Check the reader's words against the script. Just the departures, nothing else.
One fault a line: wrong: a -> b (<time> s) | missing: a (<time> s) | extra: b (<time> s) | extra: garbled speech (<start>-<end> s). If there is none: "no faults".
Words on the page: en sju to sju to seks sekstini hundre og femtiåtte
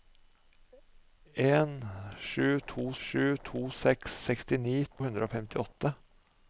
no faults